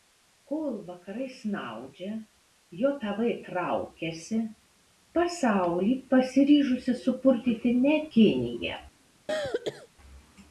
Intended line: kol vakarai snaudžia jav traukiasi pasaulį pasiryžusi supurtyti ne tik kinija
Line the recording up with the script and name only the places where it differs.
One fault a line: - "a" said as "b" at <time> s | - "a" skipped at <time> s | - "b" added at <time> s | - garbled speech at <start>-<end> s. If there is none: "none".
- "tik" skipped at 8.0 s